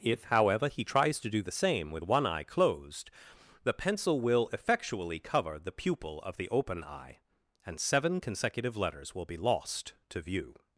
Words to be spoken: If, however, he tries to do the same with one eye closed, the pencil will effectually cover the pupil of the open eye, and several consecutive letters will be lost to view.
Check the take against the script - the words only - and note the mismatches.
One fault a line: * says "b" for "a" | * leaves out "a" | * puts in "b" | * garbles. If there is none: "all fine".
* says "seven" for "several"